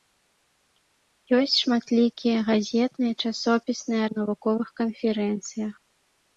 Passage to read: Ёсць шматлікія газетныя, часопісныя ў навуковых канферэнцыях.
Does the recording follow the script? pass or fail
pass